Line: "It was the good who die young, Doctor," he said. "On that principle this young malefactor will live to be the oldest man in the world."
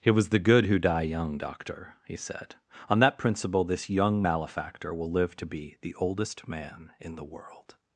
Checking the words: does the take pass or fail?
pass